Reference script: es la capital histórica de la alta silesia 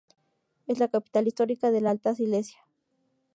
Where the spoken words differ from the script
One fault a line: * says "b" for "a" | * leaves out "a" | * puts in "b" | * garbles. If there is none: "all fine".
all fine